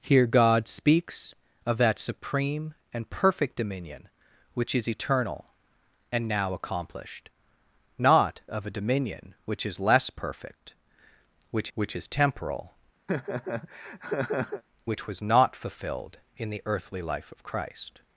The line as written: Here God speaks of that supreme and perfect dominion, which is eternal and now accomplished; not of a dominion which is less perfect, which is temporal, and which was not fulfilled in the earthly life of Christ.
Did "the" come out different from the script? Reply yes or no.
no